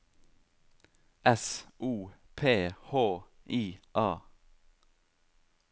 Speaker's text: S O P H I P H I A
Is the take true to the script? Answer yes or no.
no